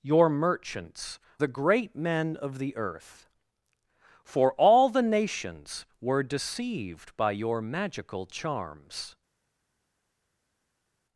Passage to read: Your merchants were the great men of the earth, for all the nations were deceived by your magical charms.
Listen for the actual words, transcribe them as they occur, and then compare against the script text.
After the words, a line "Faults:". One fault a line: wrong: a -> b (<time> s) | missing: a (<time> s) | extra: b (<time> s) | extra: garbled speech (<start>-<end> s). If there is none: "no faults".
Your merchants the great men of the earth, for all the nations were deceived by your magical charms.
Faults:
missing: were (1.2 s)